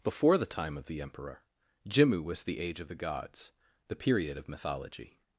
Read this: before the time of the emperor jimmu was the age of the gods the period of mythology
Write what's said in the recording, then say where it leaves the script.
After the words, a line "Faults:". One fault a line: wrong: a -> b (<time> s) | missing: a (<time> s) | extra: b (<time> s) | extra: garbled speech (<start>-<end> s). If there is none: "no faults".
before the time of the emperor jimmu was the age of the gods the period of mythology
Faults:
no faults